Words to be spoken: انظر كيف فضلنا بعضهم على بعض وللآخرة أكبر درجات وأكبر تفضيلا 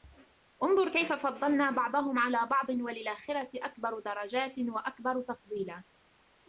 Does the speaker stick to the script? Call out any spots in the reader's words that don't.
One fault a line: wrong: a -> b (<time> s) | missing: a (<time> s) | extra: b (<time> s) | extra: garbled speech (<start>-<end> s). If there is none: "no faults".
no faults